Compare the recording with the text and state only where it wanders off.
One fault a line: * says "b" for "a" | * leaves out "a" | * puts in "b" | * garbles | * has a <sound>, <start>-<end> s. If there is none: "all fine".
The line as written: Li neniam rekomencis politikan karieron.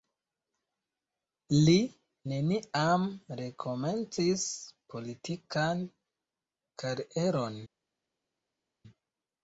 all fine